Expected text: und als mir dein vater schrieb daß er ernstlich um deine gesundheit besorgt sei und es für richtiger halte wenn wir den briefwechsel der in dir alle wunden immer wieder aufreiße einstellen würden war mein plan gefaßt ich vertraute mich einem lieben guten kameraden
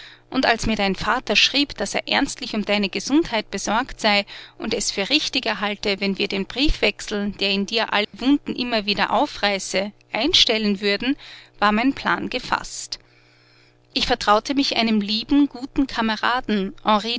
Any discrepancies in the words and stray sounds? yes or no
yes